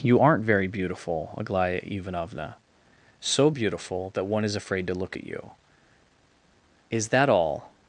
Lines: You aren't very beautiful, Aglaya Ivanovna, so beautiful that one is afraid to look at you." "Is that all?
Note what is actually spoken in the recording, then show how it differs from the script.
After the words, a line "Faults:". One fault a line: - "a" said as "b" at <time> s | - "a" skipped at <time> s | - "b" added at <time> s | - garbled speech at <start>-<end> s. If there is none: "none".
You aren't very beautiful, Aglaya Ivanovna, so beautiful that one is afraid to look at you." "Is that all?
Faults:
none